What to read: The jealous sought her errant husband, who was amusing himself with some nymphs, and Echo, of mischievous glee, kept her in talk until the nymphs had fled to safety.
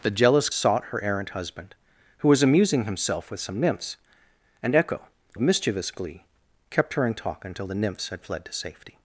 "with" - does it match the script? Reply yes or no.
yes